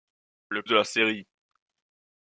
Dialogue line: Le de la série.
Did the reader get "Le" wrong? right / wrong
right